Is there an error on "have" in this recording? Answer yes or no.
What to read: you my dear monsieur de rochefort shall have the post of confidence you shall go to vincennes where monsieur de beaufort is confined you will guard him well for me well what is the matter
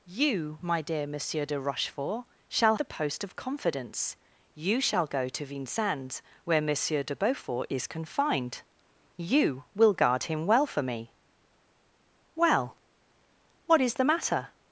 yes